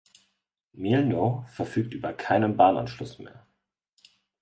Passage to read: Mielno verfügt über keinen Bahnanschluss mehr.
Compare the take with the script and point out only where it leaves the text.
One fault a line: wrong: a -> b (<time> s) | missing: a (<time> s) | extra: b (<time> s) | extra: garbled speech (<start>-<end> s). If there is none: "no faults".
no faults